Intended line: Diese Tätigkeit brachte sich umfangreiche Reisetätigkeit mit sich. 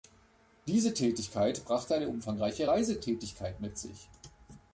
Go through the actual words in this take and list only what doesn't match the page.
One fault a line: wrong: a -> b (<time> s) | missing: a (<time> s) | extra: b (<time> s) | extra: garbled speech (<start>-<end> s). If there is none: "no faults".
wrong: sich -> eine (1.9 s)